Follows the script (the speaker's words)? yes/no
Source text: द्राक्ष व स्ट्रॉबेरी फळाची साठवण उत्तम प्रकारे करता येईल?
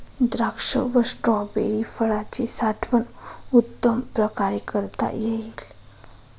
yes